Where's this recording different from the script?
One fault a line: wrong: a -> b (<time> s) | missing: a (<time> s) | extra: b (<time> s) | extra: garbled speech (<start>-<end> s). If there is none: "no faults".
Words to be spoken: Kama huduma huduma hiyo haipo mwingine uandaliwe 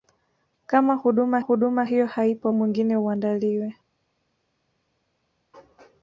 no faults